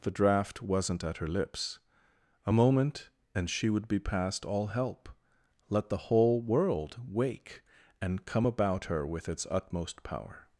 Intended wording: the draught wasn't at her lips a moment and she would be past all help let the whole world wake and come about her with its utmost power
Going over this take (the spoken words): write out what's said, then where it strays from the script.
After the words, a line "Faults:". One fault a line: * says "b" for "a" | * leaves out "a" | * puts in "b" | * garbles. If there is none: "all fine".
the draught wasn't at her lips a moment and she would be past all help let the whole world wake and come about her with its utmost power
Faults:
all fine